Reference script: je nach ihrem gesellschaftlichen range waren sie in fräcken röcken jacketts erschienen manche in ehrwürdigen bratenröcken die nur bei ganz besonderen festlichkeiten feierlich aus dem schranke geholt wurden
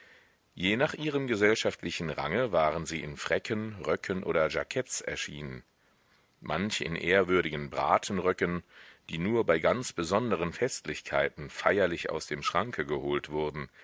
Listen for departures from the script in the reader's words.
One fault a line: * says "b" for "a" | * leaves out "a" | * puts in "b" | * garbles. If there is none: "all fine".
* puts in "oder"